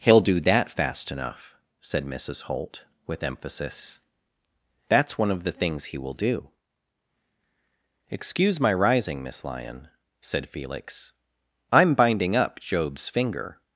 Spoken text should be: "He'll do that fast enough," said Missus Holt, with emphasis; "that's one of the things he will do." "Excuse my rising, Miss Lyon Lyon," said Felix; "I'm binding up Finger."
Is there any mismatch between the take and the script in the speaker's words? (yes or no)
yes